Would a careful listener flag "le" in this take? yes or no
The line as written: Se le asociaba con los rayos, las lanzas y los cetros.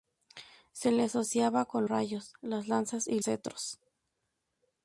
no